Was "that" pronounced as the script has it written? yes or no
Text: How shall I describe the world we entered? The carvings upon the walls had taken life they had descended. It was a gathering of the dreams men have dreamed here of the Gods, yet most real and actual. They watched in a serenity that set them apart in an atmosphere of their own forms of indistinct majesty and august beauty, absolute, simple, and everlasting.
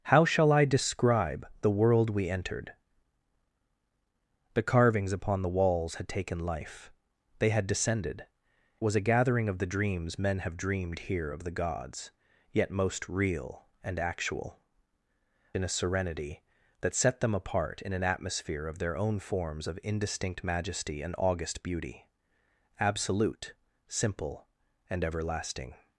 yes